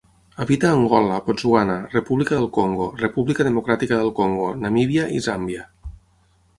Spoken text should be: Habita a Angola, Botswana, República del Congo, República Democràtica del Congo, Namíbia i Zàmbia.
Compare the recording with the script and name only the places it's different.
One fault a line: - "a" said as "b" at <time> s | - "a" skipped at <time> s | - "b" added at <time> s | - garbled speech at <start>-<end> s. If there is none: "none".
none